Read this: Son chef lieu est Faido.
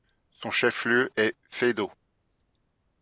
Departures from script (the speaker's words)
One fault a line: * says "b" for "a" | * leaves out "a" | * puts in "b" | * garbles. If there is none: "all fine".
all fine